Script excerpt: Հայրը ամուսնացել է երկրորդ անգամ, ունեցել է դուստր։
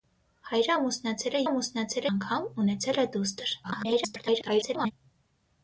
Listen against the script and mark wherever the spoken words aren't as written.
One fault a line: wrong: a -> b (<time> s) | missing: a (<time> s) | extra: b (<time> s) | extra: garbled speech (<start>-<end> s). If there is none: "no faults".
wrong: երկրորդ -> ամուսնացել (1.4 s)
extra: garbled speech (3.6-4.9 s)